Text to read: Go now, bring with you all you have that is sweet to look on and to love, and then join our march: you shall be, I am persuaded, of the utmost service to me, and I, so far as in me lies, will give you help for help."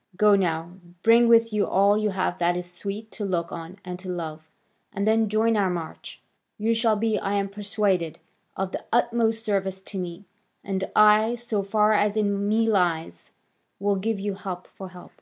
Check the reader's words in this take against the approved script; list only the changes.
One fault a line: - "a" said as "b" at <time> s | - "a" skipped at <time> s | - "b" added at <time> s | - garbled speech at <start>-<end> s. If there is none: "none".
none